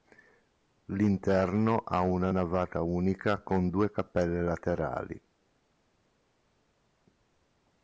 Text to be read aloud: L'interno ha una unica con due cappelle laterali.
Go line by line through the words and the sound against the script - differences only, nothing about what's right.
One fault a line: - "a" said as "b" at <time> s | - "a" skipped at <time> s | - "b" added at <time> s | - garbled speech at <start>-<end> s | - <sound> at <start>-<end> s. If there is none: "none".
- "navata" added at 2.3 s